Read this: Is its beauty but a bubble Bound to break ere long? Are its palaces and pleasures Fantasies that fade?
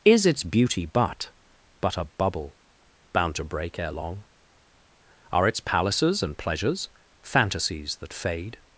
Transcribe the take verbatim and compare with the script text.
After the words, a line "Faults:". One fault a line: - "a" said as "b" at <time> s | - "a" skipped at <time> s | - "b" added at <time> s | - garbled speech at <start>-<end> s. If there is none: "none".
Is its beauty but but a bubble Bound to break ere long? Are its palaces and pleasures Fantasies that fade?
Faults:
- "but" added at 1.8 s